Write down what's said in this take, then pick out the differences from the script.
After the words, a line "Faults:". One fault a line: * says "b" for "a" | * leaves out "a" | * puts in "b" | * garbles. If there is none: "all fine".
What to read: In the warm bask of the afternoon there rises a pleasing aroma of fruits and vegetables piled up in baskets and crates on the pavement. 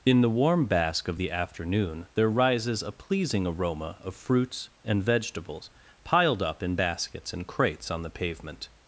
In the warm bask of the afternoon there rises a pleasing aroma of fruits and vegetables piled up in baskets and crates on the pavement.
Faults:
all fine